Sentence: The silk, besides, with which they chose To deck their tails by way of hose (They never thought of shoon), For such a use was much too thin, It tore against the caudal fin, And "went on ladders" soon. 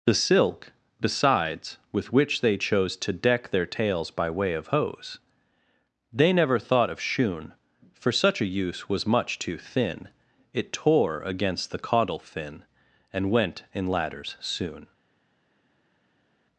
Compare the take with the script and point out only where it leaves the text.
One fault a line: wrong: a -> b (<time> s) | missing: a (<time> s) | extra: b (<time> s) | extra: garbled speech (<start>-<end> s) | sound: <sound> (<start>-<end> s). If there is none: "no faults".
wrong: on -> in (13.7 s)